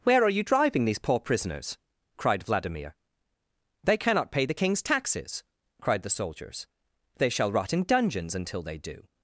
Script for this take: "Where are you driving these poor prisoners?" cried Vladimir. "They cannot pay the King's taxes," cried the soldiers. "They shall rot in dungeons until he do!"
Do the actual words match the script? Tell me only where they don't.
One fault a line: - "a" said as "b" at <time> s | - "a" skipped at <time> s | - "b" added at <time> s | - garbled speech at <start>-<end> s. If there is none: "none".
- "he" said as "they" at 8.6 s